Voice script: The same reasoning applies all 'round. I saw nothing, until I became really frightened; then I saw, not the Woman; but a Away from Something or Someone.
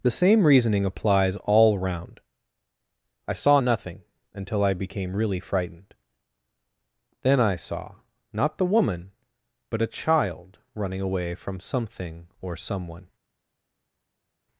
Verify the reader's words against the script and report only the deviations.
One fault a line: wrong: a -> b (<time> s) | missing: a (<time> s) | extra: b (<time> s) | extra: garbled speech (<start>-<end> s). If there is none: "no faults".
extra: Child running (9.9 s)